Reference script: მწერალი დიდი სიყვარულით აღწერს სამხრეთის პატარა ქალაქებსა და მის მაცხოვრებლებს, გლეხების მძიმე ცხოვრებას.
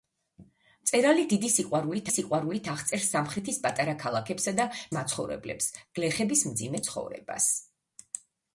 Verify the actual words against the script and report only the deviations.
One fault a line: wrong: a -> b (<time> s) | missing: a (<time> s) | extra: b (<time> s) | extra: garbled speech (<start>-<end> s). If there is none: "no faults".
extra: სიყვარულით (2.1 s)
missing: მის (4.6 s)